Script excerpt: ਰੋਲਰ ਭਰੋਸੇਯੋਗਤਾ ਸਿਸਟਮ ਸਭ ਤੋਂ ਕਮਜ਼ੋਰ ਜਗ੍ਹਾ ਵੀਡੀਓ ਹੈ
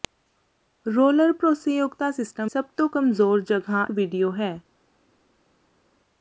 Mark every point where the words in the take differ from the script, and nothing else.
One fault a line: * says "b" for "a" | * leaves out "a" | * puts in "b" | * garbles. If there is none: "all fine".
all fine